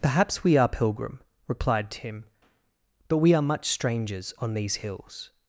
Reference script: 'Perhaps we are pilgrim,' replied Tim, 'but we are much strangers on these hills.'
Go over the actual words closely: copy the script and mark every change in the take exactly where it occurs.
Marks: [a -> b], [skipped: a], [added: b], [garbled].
'Perhaps we are pilgrim,' replied Tim, 'but we are much strangers on these hills.'